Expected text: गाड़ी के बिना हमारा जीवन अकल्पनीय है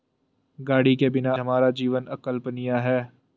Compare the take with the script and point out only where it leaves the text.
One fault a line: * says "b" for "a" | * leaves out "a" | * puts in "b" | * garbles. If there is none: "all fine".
all fine